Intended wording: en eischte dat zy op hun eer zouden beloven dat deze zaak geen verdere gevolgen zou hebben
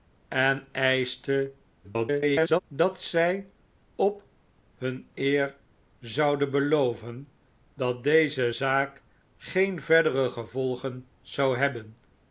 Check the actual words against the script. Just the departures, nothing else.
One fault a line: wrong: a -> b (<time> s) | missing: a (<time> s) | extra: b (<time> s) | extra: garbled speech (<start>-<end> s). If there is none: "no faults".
extra: garbled speech (1.8-2.6 s)